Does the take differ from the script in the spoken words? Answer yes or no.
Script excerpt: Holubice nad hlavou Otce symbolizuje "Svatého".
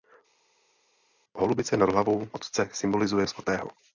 no